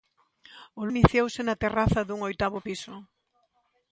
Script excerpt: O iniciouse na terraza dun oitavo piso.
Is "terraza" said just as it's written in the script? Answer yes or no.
yes